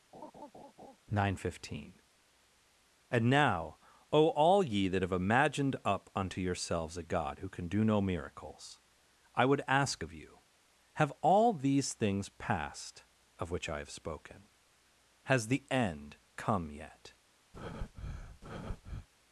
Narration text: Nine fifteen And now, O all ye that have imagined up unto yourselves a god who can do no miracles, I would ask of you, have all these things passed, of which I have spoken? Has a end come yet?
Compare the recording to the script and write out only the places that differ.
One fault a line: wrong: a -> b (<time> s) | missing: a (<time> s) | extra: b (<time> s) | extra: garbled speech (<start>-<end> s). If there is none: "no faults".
wrong: a -> the (15.5 s)